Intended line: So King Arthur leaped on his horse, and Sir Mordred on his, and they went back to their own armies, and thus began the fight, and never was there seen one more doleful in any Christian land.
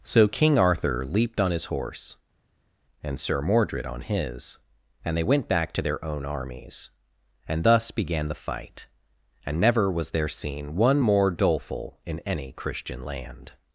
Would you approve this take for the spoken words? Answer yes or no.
yes